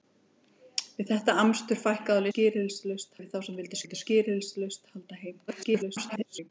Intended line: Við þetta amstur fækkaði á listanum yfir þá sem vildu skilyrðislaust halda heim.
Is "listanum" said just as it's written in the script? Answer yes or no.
no